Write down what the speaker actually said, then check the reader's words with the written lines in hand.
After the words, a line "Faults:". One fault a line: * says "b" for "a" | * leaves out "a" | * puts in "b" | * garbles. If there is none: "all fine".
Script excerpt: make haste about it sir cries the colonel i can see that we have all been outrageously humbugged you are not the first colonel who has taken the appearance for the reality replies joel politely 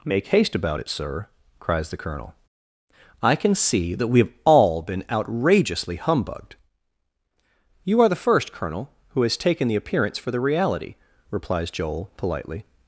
make haste about it sir cries the colonel i can see that we have all been outrageously humbugged you are the first colonel who has taken the appearance for the reality replies joel politely
Faults:
* leaves out "not"